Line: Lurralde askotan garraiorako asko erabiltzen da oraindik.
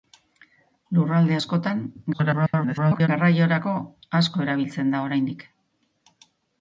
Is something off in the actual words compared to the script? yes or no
yes